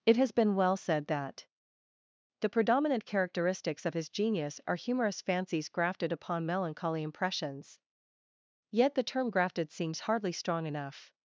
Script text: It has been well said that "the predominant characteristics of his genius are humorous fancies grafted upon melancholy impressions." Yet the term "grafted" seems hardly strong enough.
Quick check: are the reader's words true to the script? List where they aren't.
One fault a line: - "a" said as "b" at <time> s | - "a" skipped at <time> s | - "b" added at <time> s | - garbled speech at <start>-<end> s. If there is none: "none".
none